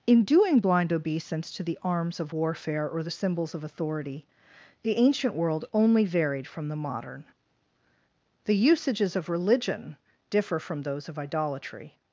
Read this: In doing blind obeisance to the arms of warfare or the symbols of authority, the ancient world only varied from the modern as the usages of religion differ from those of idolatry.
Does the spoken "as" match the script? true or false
false